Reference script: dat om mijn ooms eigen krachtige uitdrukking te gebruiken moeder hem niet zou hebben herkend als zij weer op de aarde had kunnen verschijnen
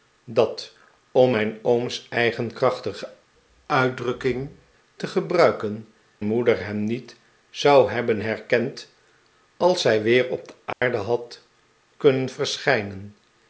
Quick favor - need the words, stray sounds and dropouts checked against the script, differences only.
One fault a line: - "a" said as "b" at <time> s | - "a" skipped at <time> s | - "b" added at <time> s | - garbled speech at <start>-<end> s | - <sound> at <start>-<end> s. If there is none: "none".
- dropout at 10.7-10.8 s